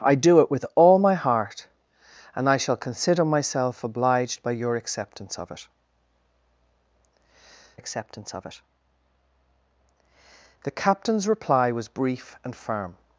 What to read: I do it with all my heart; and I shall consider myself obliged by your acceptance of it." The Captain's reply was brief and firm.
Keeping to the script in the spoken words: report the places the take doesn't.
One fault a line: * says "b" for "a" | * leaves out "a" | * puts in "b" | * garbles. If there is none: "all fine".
* puts in "acceptance of it"